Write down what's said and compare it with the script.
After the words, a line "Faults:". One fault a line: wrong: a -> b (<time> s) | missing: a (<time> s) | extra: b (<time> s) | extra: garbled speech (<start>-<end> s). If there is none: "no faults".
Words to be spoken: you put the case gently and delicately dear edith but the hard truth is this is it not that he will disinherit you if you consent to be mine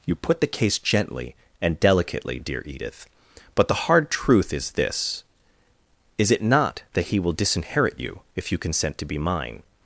you put the case gently and delicately dear edith but the hard truth is this is it not that he will disinherit you if you consent to be mine
Faults:
no faults